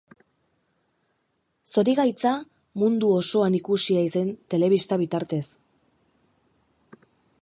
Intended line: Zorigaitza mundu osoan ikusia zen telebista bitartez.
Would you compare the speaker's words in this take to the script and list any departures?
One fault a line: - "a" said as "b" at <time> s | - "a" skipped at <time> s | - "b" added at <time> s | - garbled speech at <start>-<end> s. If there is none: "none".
none